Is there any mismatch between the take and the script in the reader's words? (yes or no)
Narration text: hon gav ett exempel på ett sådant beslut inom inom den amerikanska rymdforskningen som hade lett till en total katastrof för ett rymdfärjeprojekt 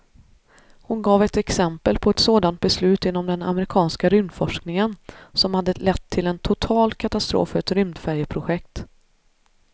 yes